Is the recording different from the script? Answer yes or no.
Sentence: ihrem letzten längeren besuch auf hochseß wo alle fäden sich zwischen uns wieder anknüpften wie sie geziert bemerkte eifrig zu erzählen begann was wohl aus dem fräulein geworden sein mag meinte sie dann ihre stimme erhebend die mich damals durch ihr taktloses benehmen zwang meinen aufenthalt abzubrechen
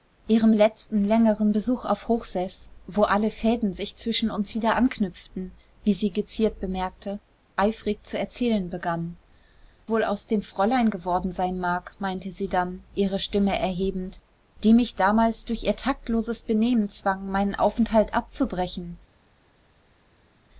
yes